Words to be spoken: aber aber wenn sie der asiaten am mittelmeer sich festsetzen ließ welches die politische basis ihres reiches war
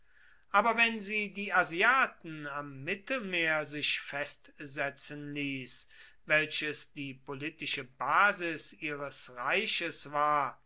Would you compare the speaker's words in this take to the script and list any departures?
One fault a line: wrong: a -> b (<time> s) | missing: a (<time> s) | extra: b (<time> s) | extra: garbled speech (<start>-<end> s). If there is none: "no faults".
missing: aber (0.8 s)
wrong: der -> die (1.3 s)